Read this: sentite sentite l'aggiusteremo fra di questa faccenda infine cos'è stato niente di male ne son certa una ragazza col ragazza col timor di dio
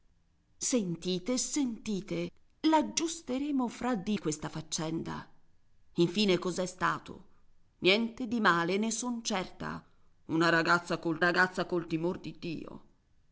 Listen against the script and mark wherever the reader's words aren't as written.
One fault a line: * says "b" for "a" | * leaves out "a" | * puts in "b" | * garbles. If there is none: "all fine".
all fine